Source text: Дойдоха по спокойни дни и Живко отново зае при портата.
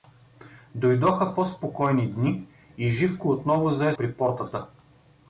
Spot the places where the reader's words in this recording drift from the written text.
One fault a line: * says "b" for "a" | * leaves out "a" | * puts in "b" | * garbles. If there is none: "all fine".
all fine